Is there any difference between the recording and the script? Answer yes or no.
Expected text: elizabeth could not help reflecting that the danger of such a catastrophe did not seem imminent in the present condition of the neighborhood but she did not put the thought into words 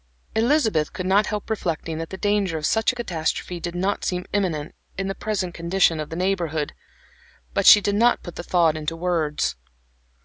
no